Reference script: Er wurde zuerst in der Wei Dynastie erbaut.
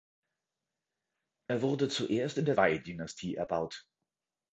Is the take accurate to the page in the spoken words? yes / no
yes